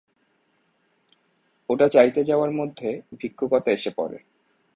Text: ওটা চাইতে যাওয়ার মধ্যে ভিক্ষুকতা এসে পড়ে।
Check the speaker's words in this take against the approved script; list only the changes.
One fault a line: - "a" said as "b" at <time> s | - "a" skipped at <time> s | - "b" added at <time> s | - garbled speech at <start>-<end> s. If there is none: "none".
none